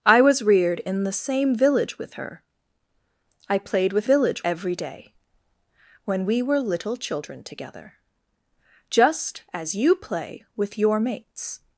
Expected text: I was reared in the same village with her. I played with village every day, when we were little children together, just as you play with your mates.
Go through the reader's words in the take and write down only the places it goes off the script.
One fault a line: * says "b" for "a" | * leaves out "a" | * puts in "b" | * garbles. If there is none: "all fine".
all fine